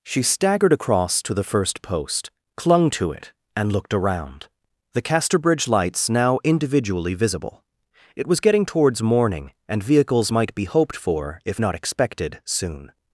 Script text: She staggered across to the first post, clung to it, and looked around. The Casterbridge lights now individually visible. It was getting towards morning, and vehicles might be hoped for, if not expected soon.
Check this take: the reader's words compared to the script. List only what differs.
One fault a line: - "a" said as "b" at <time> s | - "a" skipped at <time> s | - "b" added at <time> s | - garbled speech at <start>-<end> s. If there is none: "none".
none